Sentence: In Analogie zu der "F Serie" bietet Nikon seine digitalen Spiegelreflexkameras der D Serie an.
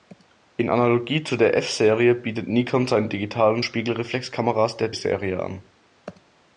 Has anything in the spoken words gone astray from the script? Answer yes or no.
yes